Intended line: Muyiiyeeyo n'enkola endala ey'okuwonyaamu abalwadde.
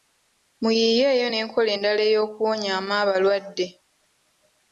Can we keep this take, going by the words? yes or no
yes